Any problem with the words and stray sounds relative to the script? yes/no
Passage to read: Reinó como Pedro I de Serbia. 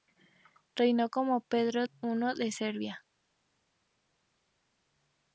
no